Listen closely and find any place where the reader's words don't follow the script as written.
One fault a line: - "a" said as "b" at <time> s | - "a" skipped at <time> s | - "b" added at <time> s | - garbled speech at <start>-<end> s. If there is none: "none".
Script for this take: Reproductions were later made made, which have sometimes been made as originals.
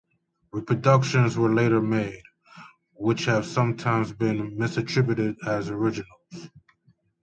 - "made" skipped at 2.2 s
- "made" said as "misattributed" at 4.6 s